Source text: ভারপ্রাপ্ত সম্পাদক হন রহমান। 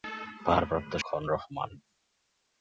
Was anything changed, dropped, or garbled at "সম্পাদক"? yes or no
yes